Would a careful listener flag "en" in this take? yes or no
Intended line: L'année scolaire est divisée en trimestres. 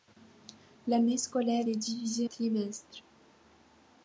yes